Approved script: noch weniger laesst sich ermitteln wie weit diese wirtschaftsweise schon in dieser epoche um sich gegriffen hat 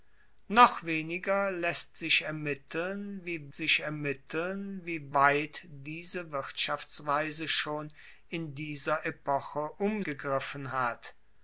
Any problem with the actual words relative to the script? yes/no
yes